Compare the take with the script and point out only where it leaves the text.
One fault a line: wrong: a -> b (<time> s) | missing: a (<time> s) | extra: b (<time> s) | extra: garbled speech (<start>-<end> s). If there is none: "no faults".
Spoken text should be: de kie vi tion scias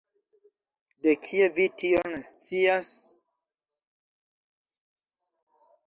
no faults